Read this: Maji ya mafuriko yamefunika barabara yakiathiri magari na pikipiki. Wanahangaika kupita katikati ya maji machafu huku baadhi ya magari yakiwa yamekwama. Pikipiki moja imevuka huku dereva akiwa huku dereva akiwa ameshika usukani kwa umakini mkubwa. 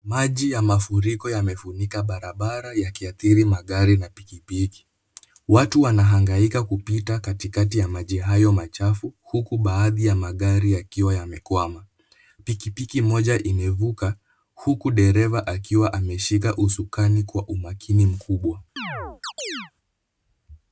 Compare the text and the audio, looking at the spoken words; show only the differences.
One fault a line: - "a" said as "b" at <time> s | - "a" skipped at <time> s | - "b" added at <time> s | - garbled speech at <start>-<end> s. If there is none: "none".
- "Watu" added at 5.5 s
- "hayo" added at 8.2 s
- "huku dereva akiwa" skipped at 15.9 s